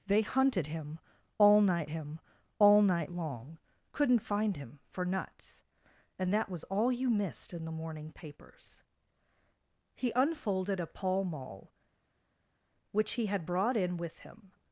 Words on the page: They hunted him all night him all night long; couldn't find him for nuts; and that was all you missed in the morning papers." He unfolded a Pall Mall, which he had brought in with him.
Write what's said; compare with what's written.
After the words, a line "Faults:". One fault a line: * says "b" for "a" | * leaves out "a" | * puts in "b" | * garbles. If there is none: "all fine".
They hunted him all night him all night long; couldn't find him for nuts; and that was all you missed in the morning papers." He unfolded a Pall Mall, which he had brought in with him.
Faults:
all fine